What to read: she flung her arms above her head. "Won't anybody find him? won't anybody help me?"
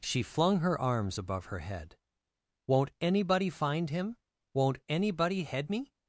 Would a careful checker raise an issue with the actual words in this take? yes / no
yes